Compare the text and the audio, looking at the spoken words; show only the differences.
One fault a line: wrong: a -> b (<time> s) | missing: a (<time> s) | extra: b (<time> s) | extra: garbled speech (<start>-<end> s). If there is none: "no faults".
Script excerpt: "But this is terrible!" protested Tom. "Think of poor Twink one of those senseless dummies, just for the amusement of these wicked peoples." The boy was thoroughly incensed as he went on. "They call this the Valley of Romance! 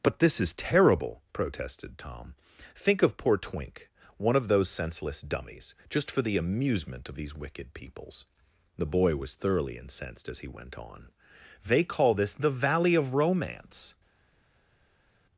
no faults